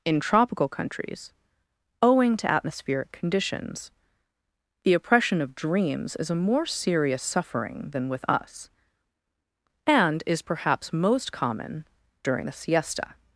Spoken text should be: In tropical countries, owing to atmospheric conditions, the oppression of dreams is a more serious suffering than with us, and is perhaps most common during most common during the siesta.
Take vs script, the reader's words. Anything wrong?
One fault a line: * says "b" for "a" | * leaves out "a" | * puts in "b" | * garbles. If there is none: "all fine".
* leaves out "most common during"